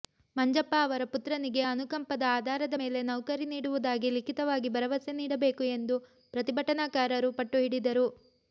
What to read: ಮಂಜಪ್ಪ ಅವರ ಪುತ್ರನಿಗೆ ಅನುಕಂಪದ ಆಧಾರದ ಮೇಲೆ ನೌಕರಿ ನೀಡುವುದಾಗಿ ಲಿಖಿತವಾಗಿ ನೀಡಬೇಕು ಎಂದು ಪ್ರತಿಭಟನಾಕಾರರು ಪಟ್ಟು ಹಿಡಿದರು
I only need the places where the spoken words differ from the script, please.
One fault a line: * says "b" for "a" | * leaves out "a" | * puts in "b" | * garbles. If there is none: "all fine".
* puts in "ಭರವಸೆ"